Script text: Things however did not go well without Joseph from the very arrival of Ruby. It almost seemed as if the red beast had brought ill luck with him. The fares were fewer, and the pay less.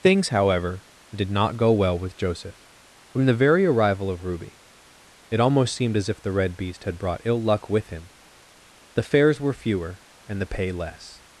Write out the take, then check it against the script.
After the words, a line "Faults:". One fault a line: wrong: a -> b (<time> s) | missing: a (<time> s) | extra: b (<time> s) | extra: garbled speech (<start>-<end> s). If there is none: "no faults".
Things however did not go well with Joseph from the very arrival of Ruby. It almost seemed as if the red beast had brought ill luck with him. The fares were fewer, and the pay less.
Faults:
wrong: without -> with (2.0 s)